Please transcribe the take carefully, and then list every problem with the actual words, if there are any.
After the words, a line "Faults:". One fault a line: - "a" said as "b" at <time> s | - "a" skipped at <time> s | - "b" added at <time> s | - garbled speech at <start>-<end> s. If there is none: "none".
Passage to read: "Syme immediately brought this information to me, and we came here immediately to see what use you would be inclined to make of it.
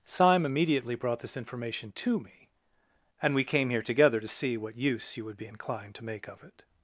"Syme immediately brought this information to me, and we came here together to see what use you would be inclined to make of it.
Faults:
- "immediately" said as "together" at 3.8 s